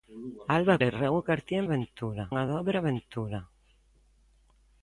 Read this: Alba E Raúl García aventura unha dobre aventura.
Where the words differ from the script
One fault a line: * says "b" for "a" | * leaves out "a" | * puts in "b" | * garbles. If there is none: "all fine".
all fine